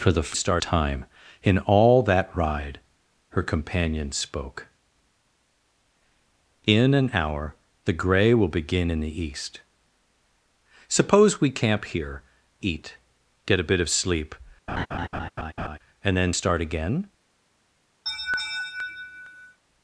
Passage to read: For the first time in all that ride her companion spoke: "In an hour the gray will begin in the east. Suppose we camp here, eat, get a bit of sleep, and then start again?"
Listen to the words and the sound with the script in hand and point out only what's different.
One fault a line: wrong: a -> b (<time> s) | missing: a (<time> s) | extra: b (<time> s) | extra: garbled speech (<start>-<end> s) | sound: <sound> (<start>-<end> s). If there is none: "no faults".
wrong: first -> start (0.3 s)
sound: laugh (14.7-15.8 s)
sound: laugh (18.1-19.6 s)